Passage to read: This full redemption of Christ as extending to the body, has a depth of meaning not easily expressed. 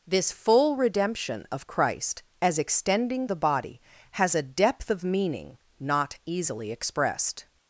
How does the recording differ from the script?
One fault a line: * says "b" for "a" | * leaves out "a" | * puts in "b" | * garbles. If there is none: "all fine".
* leaves out "to"